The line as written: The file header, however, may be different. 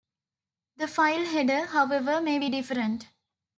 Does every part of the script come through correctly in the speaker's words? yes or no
yes